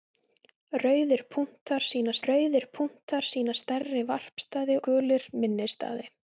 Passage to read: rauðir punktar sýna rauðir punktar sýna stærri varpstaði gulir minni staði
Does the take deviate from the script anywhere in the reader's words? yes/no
no